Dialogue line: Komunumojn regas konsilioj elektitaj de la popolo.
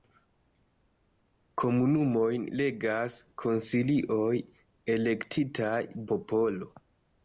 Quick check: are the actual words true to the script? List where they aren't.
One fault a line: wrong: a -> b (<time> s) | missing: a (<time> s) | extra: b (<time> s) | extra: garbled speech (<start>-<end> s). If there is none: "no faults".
missing: de la (5.8 s)